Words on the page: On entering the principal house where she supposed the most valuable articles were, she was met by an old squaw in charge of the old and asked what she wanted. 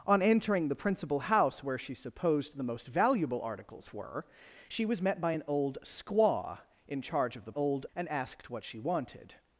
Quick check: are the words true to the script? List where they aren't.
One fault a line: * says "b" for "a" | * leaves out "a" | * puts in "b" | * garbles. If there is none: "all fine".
all fine